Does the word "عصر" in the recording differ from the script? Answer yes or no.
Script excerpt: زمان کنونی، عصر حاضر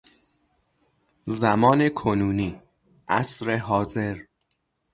no